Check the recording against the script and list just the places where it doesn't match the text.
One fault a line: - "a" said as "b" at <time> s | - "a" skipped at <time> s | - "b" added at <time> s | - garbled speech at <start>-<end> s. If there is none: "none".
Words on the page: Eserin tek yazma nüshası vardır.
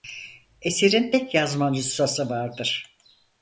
none